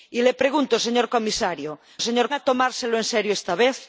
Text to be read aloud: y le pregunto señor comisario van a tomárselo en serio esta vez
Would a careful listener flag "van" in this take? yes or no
yes